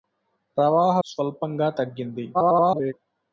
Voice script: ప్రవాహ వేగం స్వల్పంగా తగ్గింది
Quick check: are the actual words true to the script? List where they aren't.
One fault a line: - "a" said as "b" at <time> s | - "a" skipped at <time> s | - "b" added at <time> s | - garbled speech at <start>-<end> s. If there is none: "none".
- "వేగం" skipped at 0.9 s
- garbled speech at 2.3-2.9 s